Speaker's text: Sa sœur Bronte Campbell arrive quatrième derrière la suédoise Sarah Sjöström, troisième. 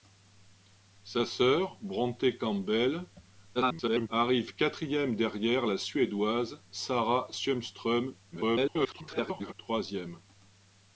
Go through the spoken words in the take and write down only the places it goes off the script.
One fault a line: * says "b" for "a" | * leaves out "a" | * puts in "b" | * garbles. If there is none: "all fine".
* garbles
* garbles